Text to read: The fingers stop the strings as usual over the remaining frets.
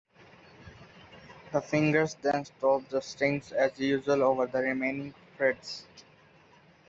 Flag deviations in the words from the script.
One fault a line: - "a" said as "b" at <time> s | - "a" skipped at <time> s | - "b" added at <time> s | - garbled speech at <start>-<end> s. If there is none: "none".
- "then" added at 2.2 s